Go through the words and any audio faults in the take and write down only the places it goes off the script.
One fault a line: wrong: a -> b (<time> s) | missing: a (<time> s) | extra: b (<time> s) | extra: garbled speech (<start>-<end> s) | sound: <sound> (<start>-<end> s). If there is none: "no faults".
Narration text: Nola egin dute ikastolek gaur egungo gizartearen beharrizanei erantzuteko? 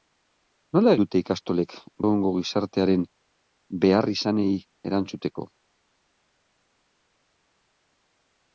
missing: egin (0.9 s)
missing: gaur (1.7 s)